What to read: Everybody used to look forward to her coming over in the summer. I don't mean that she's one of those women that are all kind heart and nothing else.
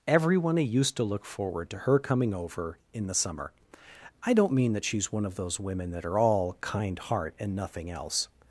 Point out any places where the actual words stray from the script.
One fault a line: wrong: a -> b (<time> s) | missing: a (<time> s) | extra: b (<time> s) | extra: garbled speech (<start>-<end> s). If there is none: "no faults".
wrong: Everybody -> Everyone (0.1 s)